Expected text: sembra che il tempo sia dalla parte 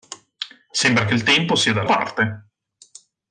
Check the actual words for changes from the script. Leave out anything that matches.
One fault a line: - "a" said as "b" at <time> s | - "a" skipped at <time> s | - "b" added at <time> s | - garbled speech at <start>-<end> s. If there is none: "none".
none